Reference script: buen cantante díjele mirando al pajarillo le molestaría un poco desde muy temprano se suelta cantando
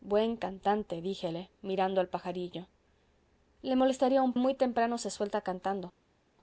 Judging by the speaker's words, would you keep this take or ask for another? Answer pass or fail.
fail